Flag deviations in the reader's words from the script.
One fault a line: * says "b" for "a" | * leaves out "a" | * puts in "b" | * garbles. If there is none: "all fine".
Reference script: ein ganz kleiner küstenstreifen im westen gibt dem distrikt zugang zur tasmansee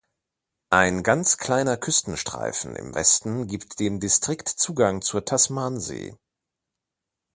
all fine